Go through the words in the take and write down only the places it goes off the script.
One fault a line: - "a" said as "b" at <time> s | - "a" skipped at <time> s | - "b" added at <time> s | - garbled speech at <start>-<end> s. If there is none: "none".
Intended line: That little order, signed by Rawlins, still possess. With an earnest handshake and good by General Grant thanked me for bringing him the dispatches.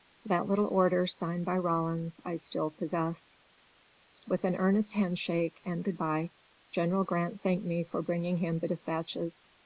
- "I" added at 2.2 s